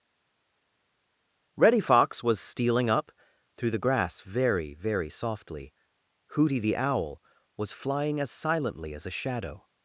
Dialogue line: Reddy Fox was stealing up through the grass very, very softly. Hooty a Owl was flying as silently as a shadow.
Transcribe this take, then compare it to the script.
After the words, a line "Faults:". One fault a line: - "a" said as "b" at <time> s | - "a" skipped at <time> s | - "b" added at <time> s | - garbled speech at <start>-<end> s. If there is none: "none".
Reddy Fox was stealing up through the grass very, very softly. Hooty the Owl was flying as silently as a shadow.
Faults:
- "a" said as "the" at 6.6 s